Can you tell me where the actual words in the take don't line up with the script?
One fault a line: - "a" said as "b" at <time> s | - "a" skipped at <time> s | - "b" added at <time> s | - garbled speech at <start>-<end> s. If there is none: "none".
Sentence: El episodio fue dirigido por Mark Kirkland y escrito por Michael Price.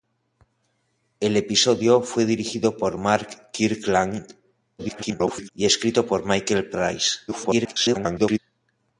- garbled speech at 4.8-5.5 s
- garbled speech at 7.3-8.4 s